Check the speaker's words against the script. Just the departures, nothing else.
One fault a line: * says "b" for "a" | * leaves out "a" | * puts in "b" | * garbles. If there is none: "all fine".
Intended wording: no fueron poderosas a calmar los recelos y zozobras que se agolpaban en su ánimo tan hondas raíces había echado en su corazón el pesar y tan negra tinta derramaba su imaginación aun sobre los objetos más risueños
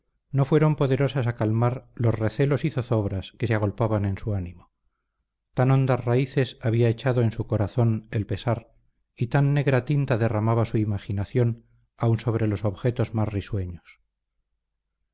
all fine